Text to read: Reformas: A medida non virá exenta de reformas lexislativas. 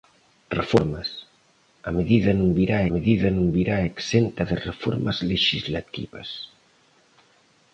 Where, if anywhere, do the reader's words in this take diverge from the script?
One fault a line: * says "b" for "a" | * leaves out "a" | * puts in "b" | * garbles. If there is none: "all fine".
* puts in "medida non virá"